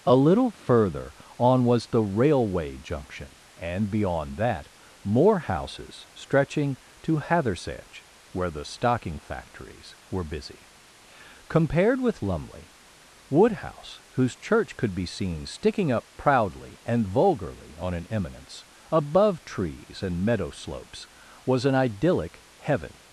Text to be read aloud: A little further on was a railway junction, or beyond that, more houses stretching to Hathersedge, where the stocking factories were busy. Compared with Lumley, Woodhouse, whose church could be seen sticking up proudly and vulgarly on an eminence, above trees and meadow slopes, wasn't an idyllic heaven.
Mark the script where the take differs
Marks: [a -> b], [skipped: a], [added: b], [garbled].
A little further on was [a -> the] railway junction, [or -> and] beyond that, more houses stretching to Hathersedge, where the stocking factories were busy. Compared with Lumley, Woodhouse, whose church could be seen sticking up proudly and vulgarly on an eminence, above trees and meadow slopes, [wasn't -> was] an idyllic heaven.